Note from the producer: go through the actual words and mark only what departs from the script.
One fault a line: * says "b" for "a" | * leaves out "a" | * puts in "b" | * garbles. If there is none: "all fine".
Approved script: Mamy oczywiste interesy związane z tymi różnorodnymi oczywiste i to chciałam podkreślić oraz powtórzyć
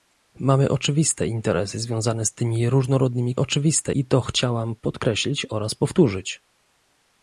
all fine